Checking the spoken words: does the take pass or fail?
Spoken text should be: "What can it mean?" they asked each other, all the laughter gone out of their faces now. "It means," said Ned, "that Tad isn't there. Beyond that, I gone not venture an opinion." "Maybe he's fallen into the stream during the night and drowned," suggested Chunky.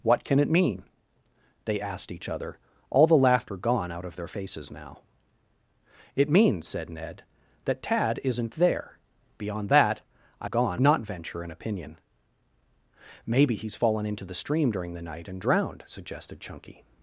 pass